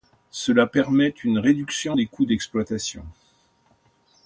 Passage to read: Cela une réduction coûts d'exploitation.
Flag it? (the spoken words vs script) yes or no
yes